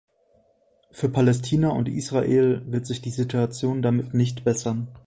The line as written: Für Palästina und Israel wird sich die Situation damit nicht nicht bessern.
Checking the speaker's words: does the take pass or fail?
fail